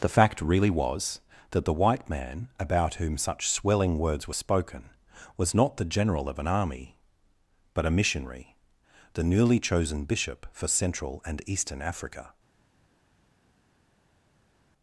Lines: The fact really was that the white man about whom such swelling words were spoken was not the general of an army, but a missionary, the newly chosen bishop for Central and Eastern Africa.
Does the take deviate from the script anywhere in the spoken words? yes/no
no